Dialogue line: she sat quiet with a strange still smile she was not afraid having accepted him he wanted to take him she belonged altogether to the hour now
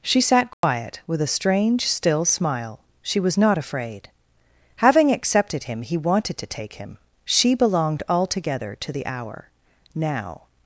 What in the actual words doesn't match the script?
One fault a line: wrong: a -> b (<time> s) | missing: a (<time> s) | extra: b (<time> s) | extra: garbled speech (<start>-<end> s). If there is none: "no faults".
no faults